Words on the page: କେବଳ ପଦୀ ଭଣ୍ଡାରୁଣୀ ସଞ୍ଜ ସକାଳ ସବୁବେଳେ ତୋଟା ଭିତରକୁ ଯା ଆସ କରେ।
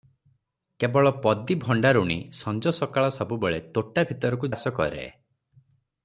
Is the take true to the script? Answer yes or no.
no